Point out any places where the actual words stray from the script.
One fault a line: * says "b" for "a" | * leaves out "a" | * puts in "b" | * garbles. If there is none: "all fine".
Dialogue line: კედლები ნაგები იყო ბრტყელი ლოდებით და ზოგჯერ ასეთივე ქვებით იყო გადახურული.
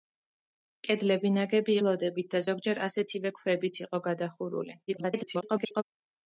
* leaves out "იყო ბრტყელი"
* garbles